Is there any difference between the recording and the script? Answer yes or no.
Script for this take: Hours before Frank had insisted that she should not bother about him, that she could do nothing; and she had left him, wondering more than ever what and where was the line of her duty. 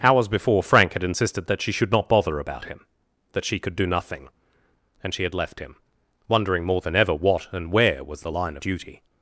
yes